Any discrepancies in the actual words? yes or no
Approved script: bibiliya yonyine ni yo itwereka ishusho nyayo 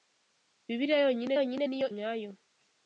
yes